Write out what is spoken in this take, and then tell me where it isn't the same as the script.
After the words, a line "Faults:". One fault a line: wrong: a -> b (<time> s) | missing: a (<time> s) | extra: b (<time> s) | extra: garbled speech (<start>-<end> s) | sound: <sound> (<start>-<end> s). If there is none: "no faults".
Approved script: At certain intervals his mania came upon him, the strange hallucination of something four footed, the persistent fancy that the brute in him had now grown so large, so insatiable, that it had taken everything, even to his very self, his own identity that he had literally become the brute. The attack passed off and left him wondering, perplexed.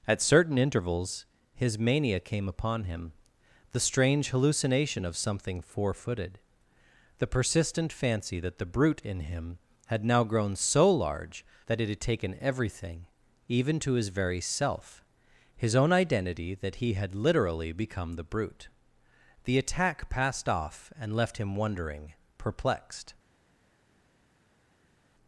At certain intervals his mania came upon him, the strange hallucination of something four footed, the persistent fancy that the brute in him had now grown so large, that it had taken everything, even to his very self, his own identity that he had literally become the brute. The attack passed off and left him wondering, perplexed.
Faults:
missing: so insatiable (11.4 s)